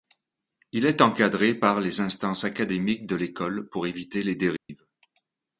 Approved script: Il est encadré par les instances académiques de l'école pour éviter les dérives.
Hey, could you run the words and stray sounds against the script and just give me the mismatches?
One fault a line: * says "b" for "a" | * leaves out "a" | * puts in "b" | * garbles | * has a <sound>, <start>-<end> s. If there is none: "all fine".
* has a dropout, 4.6-4.7 s